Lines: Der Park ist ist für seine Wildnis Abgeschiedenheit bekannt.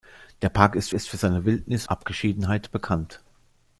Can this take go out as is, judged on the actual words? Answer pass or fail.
pass